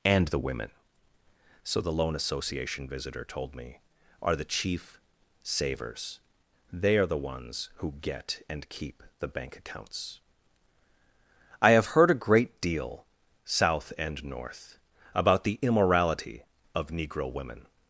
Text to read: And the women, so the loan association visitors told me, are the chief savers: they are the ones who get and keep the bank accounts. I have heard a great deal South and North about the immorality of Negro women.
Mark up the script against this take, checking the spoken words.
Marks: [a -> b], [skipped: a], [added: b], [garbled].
And the women, so the loan association [visitors -> visitor] told me, are the chief savers: they are the ones who get and keep the bank accounts. I have heard a great deal South and North about the immorality of Negro women.